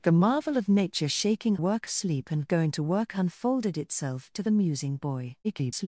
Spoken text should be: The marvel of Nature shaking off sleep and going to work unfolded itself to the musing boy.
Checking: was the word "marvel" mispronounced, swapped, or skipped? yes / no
no